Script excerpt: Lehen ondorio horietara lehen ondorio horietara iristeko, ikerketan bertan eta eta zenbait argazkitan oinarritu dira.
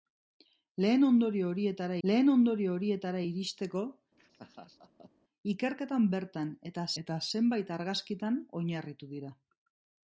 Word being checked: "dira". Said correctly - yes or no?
yes